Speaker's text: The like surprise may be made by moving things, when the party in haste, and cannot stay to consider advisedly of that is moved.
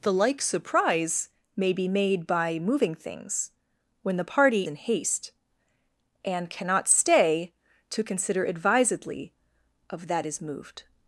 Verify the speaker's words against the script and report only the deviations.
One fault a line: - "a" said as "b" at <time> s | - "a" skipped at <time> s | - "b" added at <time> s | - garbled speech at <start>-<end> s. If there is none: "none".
none